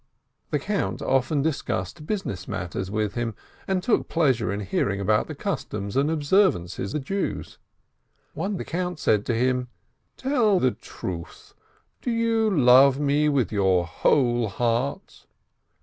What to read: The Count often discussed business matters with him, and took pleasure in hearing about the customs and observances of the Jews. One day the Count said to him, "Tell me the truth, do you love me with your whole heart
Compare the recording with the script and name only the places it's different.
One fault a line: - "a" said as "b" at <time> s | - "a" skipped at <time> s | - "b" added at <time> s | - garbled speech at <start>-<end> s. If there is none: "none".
- "of" skipped at 7.0 s
- "day" skipped at 8.6 s
- "me" skipped at 10.6 s